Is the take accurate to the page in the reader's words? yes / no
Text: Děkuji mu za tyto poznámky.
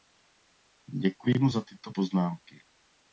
yes